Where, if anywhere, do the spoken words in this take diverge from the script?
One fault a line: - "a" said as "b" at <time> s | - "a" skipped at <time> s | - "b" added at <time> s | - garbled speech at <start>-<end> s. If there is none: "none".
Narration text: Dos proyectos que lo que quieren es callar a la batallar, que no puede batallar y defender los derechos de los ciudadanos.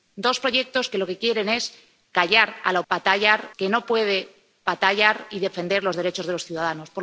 none